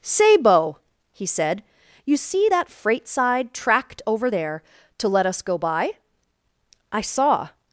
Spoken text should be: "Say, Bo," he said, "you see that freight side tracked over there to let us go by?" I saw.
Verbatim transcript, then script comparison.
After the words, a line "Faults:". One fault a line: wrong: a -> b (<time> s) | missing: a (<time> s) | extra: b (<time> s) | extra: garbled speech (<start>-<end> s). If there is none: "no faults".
"Say, Bo," he said, "you see that freight side tracked over there to let us go by?" I saw.
Faults:
no faults